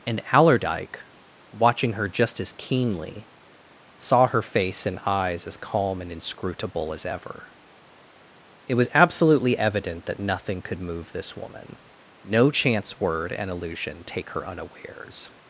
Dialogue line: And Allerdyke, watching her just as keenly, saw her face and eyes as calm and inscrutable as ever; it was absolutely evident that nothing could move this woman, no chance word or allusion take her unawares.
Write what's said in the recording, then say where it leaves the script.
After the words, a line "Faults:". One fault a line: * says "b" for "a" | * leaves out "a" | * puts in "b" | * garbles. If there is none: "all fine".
And Allerdyke, watching her just as keenly, saw her face and eyes as calm and inscrutable as ever; it was absolutely evident that nothing could move this woman, no chance word and allusion take her unawares.
Faults:
* says "and" for "or"